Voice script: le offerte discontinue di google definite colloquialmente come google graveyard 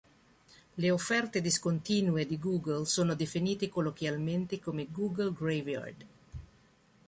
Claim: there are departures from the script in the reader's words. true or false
true